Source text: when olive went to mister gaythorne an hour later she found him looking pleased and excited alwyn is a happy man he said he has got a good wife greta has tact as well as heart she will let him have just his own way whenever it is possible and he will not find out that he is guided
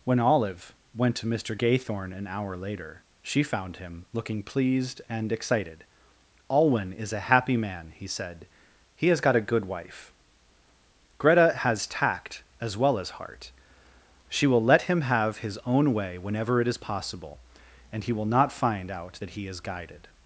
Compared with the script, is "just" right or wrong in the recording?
wrong